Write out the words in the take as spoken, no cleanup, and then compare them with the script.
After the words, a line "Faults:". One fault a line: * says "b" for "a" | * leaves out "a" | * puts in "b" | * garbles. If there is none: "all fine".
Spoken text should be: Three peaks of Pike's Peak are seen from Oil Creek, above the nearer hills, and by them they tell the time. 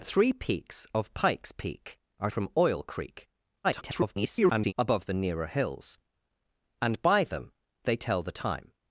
Three peaks of Pike's Peak are from Oil Creek, [garbled] above the nearer hills, and by them they tell the time.
Faults:
* leaves out "seen"
* garbles